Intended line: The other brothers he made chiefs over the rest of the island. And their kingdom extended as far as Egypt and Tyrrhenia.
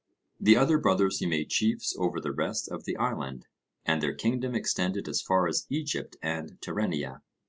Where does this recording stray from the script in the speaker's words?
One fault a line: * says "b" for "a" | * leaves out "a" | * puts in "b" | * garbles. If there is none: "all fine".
all fine